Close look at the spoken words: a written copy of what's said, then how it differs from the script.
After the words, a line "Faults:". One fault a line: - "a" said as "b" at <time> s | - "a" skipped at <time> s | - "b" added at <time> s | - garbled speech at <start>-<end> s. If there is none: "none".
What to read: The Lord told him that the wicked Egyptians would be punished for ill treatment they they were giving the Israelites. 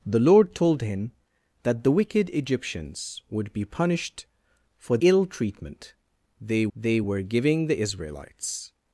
The Lord told him that the wicked Egyptians would be punished for ill treatment they they were giving the Israelites.
Faults:
none